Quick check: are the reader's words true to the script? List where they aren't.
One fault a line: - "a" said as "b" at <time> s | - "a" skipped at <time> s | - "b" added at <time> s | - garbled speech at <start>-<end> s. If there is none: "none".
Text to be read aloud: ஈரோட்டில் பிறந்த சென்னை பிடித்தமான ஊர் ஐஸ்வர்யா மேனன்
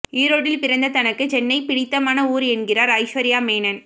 - "தனக்கு" added at 0.9 s
- "என்கிறார்" added at 2.5 s